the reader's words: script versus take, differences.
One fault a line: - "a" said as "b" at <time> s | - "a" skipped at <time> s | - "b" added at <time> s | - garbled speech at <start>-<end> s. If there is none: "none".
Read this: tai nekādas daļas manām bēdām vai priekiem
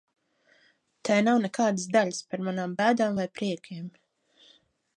- "nav" added at 1.3 s
- "par" added at 2.3 s